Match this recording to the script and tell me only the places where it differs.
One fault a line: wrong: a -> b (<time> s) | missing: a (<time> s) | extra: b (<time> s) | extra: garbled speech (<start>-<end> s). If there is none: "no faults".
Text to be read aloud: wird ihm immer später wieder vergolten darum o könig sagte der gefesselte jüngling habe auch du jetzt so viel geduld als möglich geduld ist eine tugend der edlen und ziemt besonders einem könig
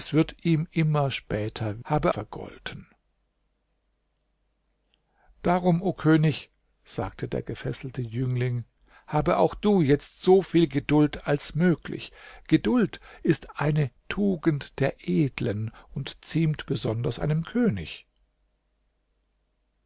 wrong: wieder -> habe (1.8 s)